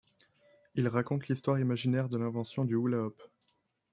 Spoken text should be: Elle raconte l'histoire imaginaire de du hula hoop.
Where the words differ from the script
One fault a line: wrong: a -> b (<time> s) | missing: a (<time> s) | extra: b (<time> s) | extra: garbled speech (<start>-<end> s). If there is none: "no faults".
wrong: Elle -> Il (0.7 s)
extra: l'invention (2.2 s)